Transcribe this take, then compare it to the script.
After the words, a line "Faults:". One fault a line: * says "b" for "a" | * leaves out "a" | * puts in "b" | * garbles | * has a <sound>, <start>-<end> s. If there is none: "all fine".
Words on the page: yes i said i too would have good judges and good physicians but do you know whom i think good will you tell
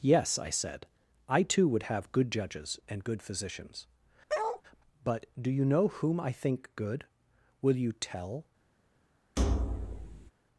yes i said i too would have good judges and good physicians but do you know whom i think good will you tell
Faults:
* has a bark, 4.3-4.6 s
* has a thud, 9.4-10.3 s